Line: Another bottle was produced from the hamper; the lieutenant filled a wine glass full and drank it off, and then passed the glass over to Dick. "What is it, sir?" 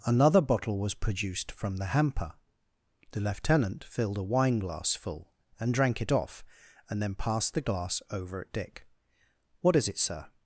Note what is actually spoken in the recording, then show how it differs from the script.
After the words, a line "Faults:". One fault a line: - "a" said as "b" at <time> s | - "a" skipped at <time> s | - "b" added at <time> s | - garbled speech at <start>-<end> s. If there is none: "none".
Another bottle was produced from the hamper; the lieutenant filled a wine glass full and drank it off, and then passed the glass over at Dick. "What is it, sir?"
Faults:
- "to" said as "at" at 8.4 s